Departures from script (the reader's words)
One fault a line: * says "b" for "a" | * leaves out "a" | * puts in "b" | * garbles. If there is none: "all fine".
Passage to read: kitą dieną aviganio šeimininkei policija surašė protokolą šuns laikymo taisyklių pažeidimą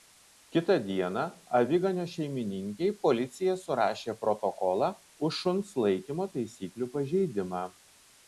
* puts in "už"